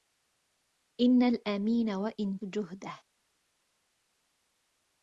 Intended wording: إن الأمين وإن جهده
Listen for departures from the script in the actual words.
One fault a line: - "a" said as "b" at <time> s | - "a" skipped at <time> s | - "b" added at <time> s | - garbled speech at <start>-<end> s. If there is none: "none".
none